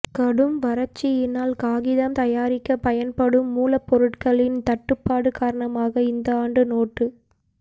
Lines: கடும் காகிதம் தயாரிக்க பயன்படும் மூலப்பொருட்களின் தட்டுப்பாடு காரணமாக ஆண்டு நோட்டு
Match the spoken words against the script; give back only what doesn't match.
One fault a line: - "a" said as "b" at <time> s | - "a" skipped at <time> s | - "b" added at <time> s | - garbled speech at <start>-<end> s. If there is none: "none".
- "வறட்சியினால்" added at 0.6 s
- "இந்த" added at 6.1 s